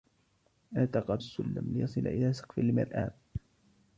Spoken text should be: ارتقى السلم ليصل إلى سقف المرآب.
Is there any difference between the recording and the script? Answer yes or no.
no